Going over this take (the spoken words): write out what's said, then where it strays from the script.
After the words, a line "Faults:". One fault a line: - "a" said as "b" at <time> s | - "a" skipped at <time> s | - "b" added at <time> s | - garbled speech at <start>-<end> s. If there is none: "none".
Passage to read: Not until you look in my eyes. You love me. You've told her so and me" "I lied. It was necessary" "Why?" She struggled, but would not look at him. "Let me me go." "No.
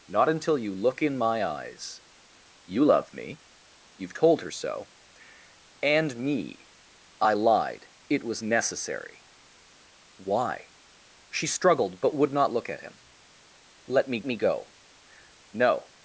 Not until you look in my eyes. You love me. You've told her so and me" "I lied. It was necessary" "Why?" She struggled, but would not look at him. "Let me me go." "No.
Faults:
none